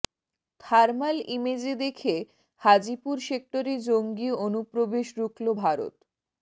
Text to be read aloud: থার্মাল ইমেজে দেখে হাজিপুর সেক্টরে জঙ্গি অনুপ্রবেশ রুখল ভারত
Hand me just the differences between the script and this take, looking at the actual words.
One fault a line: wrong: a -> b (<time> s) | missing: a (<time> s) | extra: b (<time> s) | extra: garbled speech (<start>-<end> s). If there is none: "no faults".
no faults